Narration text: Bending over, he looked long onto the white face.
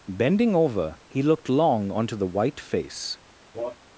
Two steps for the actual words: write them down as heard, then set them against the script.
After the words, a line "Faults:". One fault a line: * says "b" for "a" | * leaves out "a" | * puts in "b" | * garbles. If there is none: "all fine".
Bending over, he looked long onto the white face.
Faults:
all fine